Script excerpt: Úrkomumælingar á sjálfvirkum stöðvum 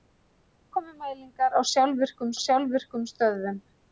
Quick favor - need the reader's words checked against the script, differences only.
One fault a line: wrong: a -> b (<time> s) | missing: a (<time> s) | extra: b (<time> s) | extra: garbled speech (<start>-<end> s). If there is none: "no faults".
extra: sjálfvirkum (2.5 s)